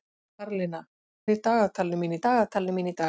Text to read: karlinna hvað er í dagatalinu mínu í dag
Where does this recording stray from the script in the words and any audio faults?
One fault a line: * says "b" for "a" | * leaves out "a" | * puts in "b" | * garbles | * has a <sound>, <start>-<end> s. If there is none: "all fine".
* leaves out "hvað"
* puts in "dagatalinu mínu"